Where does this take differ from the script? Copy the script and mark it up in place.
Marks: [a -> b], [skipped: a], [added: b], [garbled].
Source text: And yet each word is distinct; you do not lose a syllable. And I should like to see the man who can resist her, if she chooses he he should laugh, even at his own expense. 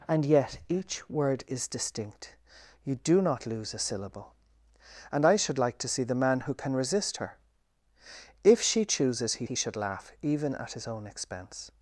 And yet each word is distinct; you do not lose a syllable. And I should like to see the man who can resist her, if she chooses he he should laugh, even at his own expense.